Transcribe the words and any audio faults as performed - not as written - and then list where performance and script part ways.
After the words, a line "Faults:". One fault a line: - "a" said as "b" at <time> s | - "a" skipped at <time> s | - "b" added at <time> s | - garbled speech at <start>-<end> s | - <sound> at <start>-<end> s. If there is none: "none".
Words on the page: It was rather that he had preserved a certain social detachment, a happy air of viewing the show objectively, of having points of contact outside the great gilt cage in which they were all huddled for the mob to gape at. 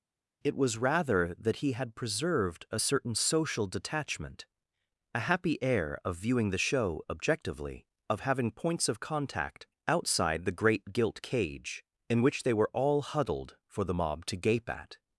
It was rather that he had preserved a certain social detachment, a happy air of viewing the show objectively, of having points of contact outside the great gilt cage in which they were all huddled for the mob to gape at.
Faults:
none